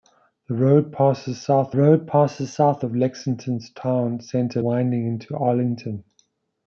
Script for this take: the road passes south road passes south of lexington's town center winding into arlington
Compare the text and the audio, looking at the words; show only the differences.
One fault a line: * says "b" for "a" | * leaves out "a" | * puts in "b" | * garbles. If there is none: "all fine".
all fine